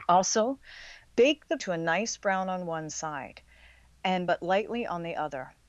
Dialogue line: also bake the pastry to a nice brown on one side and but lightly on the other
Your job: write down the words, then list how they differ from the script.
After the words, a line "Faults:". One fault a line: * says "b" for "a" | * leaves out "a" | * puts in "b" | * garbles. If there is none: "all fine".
also bake the to a nice brown on one side and but lightly on the other
Faults:
* leaves out "pastry"